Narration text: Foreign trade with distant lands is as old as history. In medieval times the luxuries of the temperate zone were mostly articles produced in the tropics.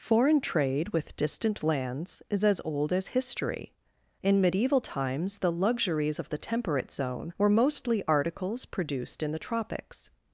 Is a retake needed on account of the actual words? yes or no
no